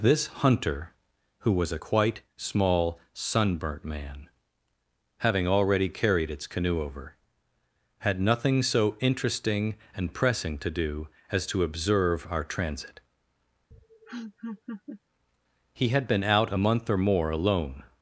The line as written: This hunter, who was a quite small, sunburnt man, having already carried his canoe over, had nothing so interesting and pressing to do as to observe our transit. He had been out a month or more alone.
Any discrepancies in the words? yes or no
yes